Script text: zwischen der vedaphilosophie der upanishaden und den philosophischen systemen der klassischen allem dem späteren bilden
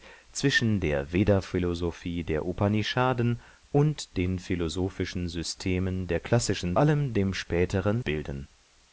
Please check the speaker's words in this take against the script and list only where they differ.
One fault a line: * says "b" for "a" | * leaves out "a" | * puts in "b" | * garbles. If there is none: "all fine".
all fine